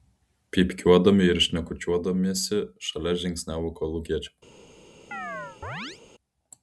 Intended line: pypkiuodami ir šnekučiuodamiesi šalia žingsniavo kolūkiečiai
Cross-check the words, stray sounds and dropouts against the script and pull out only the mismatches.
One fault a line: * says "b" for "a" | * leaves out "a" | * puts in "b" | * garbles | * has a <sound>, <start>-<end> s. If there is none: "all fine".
* has a chirp, 5.1-6.0 s